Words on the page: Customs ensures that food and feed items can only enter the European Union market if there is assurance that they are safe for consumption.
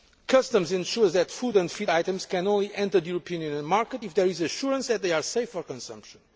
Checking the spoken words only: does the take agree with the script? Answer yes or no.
yes